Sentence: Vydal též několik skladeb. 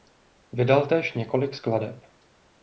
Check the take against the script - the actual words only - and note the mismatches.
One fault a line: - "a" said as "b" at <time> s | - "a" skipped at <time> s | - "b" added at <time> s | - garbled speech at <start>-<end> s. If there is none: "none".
none